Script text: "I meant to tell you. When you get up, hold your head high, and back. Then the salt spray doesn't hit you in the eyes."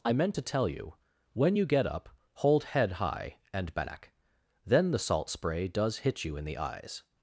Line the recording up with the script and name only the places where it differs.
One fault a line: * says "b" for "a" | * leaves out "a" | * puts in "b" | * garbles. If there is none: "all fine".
* leaves out "your"
* says "does" for "doesn't"